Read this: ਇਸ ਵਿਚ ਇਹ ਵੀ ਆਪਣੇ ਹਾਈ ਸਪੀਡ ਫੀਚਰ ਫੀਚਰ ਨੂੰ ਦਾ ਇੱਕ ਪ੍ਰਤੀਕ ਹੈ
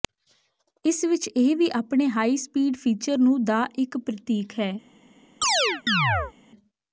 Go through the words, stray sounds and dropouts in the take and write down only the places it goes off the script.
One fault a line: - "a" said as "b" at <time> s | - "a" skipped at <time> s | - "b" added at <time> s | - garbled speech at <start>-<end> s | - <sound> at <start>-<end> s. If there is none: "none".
- "ਫੀਚਰ" skipped at 3.2 s
- chirp at 5.4-6.3 s